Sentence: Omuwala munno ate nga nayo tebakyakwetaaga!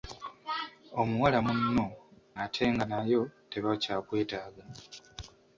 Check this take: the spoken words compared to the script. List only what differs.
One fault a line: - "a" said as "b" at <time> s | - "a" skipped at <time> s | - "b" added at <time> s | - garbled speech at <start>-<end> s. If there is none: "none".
none